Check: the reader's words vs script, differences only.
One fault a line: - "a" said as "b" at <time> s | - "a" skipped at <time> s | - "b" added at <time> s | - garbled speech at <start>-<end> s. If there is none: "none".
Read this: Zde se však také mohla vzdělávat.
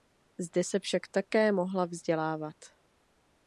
none